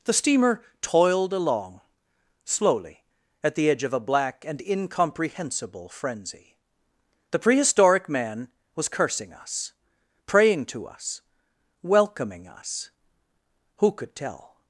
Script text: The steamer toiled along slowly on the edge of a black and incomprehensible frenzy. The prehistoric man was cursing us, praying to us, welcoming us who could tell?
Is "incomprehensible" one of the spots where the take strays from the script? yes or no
no